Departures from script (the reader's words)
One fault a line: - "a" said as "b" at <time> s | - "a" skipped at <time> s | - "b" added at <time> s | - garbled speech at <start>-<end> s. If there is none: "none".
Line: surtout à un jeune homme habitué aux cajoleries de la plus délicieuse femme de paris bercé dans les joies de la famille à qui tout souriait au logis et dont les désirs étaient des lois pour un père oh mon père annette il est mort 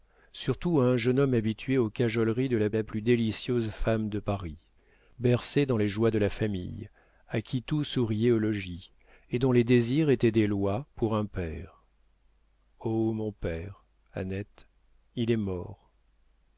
- "la" added at 2.7 s